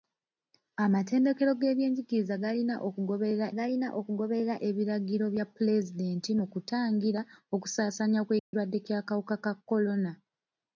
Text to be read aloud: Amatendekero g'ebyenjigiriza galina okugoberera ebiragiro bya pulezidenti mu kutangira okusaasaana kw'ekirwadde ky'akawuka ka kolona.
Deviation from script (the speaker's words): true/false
true